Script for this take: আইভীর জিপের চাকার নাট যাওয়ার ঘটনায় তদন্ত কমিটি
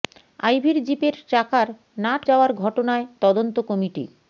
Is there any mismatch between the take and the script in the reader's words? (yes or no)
no